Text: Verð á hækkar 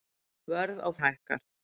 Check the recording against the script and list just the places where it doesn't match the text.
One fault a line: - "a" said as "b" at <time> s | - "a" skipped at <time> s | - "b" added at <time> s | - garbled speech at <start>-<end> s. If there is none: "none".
none